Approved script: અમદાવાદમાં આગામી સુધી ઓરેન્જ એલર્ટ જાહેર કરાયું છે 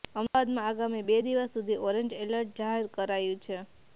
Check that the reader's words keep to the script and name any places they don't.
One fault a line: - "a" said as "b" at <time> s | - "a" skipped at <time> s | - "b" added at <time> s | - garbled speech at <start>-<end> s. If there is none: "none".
- "બે દિવસ" added at 1.0 s